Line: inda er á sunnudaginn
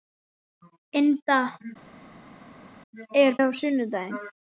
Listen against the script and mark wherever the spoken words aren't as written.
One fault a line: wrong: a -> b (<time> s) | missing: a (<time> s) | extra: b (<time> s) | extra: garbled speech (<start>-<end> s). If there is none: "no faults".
no faults